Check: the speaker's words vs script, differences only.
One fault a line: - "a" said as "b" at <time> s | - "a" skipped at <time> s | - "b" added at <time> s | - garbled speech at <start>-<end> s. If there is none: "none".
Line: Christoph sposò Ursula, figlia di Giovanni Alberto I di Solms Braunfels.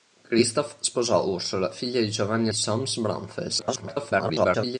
- "Alberto I di" skipped at 2.5 s
- garbled speech at 3.6-4.8 s